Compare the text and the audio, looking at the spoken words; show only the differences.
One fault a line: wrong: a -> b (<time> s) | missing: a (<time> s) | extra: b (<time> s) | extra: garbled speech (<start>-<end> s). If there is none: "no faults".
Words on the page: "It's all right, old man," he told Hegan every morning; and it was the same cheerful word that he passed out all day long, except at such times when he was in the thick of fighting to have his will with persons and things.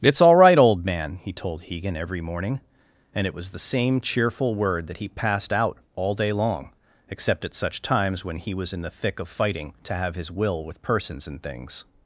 no faults